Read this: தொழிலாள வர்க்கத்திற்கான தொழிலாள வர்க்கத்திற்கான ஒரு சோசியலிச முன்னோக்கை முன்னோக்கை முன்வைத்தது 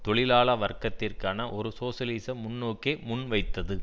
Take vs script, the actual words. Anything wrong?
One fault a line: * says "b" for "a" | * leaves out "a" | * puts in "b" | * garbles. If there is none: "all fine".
* leaves out "தொழிலாள வர்க்கத்திற்கான"
* leaves out "முன்னோக்கை"